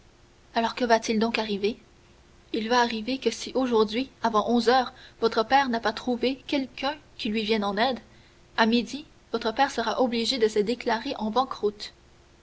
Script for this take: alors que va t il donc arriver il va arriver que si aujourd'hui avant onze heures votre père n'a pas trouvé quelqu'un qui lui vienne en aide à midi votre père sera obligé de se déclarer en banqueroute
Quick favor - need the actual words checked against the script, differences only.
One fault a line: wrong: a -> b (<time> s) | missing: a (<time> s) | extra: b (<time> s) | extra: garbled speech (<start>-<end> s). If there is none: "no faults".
no faults